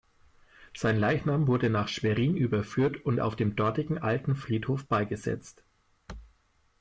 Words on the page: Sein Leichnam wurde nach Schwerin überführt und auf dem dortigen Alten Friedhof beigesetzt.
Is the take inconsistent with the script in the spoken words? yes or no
no